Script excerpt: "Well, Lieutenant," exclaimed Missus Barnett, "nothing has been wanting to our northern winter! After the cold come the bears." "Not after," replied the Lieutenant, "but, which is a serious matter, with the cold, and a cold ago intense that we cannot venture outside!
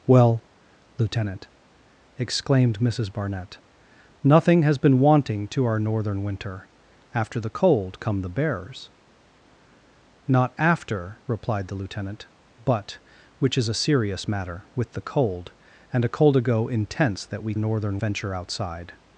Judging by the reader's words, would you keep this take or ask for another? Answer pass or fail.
fail